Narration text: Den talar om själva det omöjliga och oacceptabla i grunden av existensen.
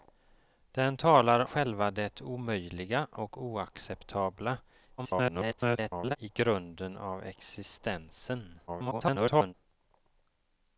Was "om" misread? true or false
true